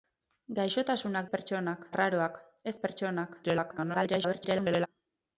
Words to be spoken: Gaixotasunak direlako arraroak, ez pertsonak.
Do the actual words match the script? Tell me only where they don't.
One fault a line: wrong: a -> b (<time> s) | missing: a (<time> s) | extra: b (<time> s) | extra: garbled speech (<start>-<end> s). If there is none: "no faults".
wrong: direlako -> pertsonak (1.4 s)
extra: garbled speech (3.4-4.9 s)